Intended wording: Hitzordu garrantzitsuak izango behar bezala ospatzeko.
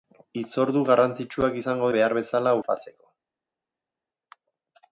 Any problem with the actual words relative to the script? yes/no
no